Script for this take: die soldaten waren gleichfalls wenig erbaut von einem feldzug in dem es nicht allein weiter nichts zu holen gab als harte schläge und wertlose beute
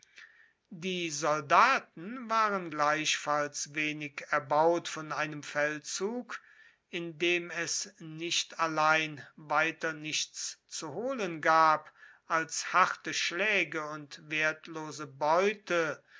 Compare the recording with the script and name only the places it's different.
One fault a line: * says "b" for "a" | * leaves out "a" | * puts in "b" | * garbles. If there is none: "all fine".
all fine